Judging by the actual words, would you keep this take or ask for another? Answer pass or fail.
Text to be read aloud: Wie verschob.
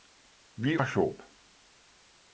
pass